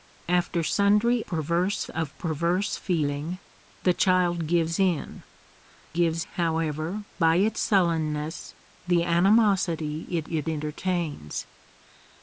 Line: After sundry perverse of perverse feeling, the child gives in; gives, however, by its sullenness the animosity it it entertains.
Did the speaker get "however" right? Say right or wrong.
right